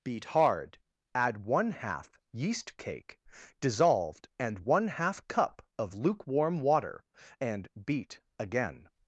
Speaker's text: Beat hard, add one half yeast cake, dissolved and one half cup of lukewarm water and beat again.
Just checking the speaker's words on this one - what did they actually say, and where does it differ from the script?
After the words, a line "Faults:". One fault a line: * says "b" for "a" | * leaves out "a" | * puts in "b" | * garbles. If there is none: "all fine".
Beat hard, add one half yeast cake, dissolved and one half cup of lukewarm water and beat again.
Faults:
all fine